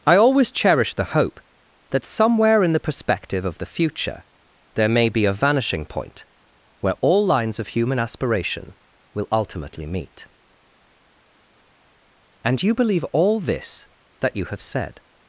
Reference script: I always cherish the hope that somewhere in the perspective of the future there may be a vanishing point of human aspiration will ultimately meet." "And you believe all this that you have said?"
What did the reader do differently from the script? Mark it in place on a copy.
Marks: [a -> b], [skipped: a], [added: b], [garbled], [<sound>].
I always cherish the hope that somewhere in the perspective of the future there may be a vanishing point [added: where all lines] of human aspiration will ultimately meet." "And you believe all this that you have said?"